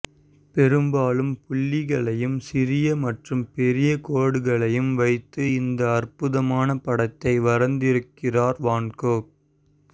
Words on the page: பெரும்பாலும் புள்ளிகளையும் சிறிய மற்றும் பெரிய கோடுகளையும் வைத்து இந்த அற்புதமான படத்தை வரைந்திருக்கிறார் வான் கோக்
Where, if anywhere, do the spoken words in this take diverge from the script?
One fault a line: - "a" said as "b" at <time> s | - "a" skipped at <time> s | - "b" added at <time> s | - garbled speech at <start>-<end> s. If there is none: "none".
none